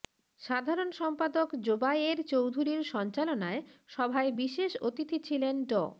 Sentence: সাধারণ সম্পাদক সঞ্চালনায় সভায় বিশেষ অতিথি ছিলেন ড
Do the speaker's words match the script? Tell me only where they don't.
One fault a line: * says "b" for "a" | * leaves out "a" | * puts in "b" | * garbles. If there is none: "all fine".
* puts in "জোবায়ের চৌধুরীর"